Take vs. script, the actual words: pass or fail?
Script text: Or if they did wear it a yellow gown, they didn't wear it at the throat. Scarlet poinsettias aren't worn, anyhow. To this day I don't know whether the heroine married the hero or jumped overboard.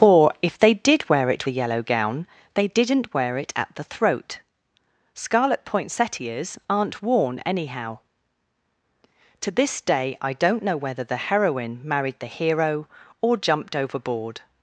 pass